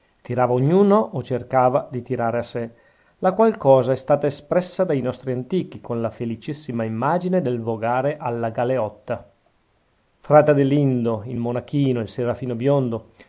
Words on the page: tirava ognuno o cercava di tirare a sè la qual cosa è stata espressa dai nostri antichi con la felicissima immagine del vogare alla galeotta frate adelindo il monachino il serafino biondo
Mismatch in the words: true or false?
false